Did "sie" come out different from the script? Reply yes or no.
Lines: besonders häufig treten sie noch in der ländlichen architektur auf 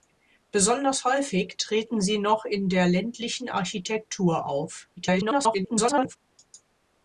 no